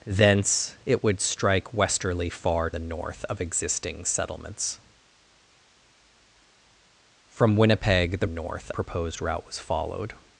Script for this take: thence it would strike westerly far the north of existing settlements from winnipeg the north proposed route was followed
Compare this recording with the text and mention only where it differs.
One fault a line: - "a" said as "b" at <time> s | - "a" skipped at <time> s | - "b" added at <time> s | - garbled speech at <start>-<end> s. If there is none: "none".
none